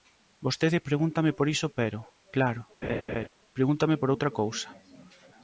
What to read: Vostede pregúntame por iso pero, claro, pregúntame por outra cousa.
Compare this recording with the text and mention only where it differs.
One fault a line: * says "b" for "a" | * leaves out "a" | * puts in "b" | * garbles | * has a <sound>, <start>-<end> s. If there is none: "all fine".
* has a laugh, 2.8-3.3 s